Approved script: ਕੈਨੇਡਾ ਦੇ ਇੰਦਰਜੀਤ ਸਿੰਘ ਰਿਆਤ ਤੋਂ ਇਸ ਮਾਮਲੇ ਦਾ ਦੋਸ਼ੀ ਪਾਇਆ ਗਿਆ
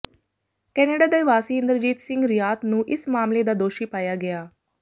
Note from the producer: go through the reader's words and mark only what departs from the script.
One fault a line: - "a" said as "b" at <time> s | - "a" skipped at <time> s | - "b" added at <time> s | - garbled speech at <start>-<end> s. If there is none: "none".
- "ਵਾਸੀ" added at 1.2 s
- "ਤੋਂ" said as "ਨੂੰ" at 2.6 s